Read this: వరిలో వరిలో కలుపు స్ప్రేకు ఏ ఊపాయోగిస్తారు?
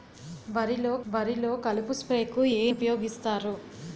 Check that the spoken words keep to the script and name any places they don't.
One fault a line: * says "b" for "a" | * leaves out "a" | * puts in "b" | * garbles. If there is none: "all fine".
all fine